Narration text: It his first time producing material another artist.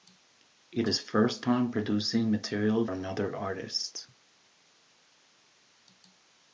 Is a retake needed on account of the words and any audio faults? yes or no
no